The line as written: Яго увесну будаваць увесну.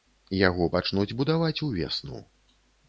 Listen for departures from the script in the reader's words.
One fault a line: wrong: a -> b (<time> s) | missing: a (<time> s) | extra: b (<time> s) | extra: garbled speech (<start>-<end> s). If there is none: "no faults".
wrong: увесну -> пачнуць (0.8 s)